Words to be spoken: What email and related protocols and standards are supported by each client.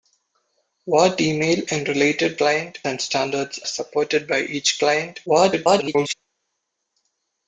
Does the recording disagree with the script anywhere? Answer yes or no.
yes